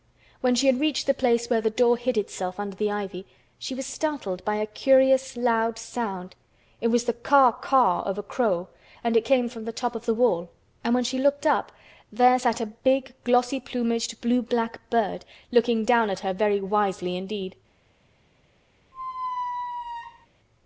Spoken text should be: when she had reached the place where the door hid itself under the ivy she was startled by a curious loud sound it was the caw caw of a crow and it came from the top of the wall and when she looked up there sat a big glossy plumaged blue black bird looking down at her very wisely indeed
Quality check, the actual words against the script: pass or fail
pass